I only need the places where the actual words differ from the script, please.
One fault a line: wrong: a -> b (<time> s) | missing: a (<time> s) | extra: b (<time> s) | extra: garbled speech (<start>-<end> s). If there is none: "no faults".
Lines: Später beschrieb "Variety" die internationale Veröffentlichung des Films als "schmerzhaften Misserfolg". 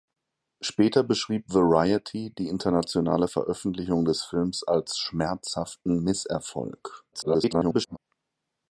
extra: garbled speech (7.1-8.0 s)